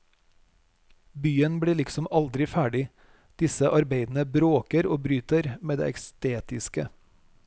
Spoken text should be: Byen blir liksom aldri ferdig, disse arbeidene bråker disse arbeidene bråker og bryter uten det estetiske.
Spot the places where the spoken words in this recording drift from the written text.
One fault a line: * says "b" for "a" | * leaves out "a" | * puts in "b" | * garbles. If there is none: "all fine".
* leaves out "disse arbeidene bråker"
* says "med" for "uten"